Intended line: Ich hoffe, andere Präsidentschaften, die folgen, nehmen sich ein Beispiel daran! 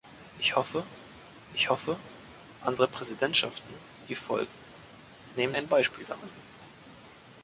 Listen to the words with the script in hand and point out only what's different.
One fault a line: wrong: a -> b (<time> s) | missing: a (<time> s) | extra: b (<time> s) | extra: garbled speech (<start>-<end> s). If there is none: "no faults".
extra: ich hoffe (1.5 s)
missing: sich (5.6 s)